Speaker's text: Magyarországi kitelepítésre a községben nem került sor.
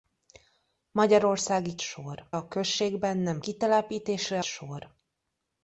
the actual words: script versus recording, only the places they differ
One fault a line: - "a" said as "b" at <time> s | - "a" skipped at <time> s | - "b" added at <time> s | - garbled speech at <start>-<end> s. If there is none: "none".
- "kitelepítésre" said as "sor" at 1.8 s
- "került" said as "kitelepítésre" at 3.4 s